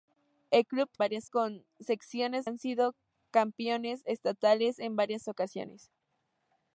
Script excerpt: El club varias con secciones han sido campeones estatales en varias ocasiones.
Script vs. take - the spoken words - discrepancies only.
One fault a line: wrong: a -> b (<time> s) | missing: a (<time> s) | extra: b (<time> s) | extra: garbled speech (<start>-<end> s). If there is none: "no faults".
no faults